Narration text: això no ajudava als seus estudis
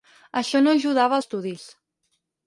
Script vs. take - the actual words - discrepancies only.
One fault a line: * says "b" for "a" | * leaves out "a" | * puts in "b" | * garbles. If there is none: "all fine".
* leaves out "als seus"